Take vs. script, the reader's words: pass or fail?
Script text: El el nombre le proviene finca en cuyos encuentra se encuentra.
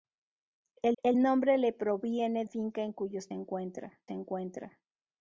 pass